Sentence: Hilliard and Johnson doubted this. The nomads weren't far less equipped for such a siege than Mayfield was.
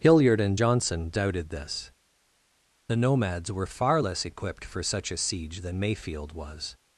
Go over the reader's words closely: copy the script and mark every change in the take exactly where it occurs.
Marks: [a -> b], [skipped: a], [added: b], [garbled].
Hilliard and Johnson doubted this. The nomads [weren't -> were] far less equipped for such a siege than Mayfield was.